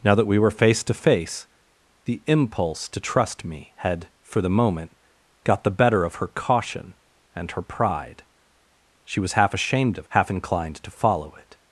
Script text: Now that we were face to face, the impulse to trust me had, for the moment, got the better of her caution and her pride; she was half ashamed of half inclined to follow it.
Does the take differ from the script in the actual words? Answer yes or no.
no